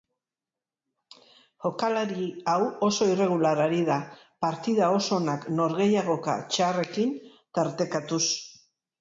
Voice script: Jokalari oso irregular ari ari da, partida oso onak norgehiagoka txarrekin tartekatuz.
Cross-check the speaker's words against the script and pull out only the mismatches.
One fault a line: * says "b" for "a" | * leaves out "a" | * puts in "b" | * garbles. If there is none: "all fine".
* puts in "hau"
* leaves out "ari"